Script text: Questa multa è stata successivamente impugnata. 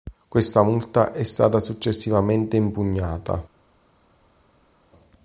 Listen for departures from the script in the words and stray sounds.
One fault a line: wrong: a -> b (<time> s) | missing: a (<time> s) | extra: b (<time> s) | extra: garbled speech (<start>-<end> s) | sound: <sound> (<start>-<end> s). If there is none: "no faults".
no faults